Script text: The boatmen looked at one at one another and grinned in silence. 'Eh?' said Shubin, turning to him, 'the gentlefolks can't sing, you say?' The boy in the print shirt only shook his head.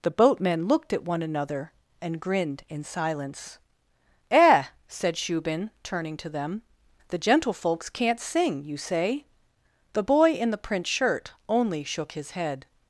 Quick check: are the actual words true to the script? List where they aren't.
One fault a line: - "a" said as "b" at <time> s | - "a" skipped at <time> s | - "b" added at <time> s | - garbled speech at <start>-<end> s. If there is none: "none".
- "at one" skipped at 1.2 s
- "him" said as "them" at 6.3 s